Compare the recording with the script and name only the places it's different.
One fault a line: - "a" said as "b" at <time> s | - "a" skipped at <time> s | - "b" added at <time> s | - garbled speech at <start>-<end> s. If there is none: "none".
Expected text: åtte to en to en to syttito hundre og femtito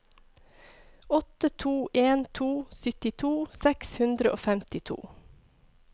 - "en to syttito" said as "syttito seks" at 2.8 s